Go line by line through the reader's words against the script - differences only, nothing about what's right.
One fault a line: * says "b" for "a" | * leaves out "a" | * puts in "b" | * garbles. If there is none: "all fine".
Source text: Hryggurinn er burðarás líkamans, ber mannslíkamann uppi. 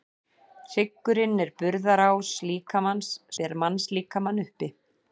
all fine